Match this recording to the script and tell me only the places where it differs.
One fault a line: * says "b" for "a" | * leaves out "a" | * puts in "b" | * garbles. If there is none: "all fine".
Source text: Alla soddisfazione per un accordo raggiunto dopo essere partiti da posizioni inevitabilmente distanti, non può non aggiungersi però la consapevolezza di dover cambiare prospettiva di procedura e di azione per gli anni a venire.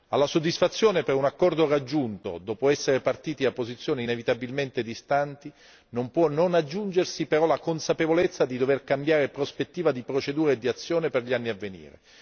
all fine